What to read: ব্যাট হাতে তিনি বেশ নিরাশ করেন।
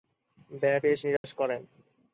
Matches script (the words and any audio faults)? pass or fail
fail